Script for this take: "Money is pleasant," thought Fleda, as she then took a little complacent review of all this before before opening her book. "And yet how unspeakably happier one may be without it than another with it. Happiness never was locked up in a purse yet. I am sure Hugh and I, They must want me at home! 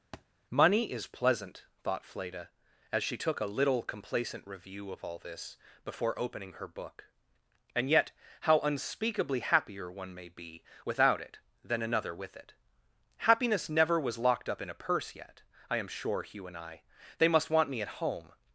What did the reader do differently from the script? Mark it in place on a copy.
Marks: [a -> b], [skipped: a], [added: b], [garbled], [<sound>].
[thud] "Money is pleasant," thought Fleda, as she [skipped: then] took a little complacent review of all this before [skipped: before] opening her book. "And yet how unspeakably happier one may be without it than another with it. Happiness never was locked up in a purse yet. I am sure Hugh and I, They must want me at home!